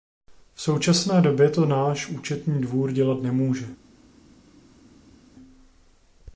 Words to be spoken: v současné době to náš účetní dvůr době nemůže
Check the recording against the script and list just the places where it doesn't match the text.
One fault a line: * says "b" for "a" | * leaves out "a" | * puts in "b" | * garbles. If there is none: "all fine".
* says "dělat" for "době"